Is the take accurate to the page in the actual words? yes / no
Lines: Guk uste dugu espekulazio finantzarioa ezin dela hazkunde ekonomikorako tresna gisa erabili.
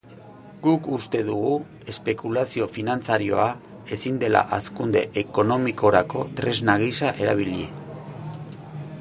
yes